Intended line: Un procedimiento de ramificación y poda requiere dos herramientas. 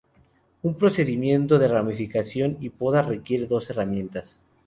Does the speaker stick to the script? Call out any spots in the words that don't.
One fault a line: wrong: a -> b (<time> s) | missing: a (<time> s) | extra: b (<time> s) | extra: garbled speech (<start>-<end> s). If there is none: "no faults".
no faults